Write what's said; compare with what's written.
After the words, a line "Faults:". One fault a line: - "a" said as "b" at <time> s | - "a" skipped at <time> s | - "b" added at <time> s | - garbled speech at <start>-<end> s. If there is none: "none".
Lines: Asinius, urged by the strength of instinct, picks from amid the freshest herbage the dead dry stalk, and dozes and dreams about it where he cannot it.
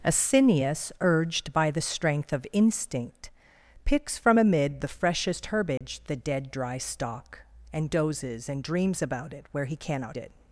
Asinius, urged by the strength of instinct, picks from amid the freshest herbage the dead dry stalk, and dozes and dreams about it where he cannot it.
Faults:
none